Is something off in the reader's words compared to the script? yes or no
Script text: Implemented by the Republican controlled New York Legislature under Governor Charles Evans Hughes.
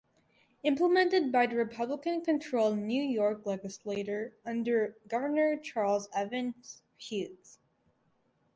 no